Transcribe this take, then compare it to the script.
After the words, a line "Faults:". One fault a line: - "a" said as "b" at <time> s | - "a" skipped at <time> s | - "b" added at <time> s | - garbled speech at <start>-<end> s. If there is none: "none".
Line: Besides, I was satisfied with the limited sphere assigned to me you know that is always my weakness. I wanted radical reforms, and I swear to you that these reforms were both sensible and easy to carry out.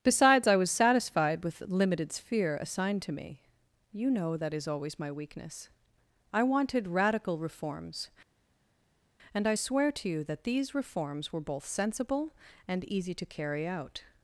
Besides, I was satisfied with the limited sphere assigned to me you know that is always my weakness. I wanted radical reforms, and I swear to you that these reforms were both sensible and easy to carry out.
Faults:
none